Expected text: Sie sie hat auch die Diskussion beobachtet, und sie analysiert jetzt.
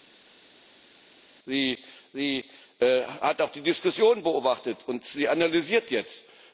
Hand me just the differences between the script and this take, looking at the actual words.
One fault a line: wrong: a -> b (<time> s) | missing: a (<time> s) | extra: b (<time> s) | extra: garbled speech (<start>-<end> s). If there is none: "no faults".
no faults